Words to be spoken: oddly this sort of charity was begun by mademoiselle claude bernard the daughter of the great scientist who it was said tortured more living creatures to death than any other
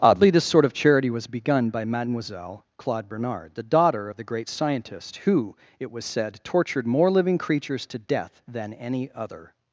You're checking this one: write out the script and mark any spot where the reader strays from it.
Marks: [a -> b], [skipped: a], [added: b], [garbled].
oddly this sort of charity was begun by mademoiselle claude bernard the daughter of the great scientist who it was said tortured more living creatures to death than any other